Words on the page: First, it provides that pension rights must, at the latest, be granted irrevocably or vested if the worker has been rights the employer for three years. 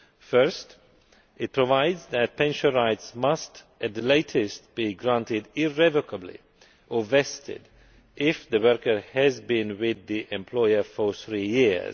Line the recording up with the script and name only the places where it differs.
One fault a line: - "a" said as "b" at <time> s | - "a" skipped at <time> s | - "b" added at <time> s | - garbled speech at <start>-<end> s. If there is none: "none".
- "rights" said as "with" at 9.8 s